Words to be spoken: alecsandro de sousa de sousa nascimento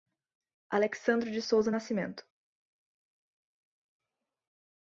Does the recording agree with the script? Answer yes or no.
no